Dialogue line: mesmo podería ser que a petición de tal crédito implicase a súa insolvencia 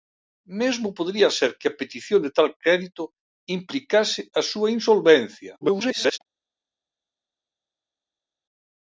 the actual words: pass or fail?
fail